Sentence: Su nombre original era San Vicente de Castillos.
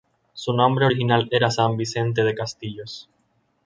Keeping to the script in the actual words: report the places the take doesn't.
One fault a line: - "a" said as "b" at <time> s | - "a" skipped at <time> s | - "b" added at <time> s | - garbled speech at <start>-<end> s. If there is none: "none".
none